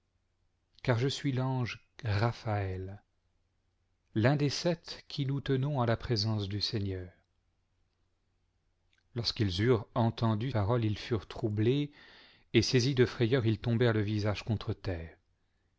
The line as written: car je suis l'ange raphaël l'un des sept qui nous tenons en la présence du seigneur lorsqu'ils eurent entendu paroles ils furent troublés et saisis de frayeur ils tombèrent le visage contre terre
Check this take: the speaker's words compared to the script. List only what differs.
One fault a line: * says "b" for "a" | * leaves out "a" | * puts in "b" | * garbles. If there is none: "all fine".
all fine